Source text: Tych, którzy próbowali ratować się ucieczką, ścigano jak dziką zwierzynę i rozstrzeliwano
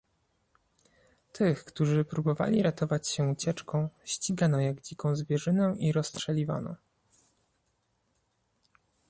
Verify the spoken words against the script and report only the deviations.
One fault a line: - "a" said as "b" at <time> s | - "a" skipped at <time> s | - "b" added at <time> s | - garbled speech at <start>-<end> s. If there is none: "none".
none